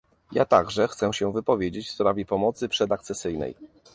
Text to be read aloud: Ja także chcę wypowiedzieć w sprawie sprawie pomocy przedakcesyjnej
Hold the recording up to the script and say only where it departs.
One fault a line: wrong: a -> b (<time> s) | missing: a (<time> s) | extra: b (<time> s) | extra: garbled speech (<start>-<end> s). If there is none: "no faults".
extra: się (1.1 s)
missing: sprawie (2.2 s)